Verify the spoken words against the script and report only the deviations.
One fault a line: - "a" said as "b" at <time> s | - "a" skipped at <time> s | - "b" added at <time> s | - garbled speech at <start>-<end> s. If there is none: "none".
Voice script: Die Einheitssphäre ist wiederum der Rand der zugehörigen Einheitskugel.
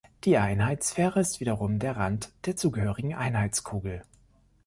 none